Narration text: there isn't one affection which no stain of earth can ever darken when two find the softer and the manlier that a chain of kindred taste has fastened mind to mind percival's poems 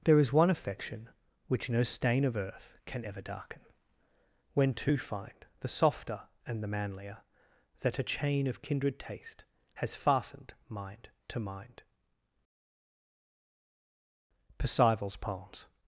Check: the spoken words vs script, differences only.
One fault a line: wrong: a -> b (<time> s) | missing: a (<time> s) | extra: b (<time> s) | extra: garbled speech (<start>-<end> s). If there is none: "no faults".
wrong: isn't -> is (0.2 s)